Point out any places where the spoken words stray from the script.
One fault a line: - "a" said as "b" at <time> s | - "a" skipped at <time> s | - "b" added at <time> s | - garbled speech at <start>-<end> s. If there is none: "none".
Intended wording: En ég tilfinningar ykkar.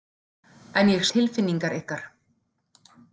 none